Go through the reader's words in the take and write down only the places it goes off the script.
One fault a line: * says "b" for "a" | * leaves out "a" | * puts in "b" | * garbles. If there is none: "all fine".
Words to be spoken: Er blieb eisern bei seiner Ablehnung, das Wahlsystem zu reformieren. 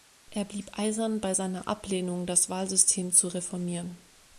all fine